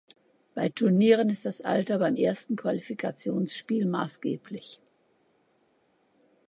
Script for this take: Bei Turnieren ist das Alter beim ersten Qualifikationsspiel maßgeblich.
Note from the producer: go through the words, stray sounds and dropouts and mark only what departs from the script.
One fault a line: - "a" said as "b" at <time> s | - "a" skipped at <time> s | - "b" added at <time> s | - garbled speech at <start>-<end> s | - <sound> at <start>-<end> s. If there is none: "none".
none